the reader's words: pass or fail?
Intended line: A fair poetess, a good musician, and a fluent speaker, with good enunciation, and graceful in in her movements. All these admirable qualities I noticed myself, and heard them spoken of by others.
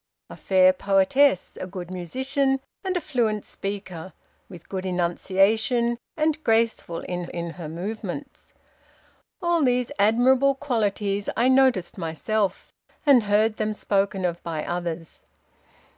pass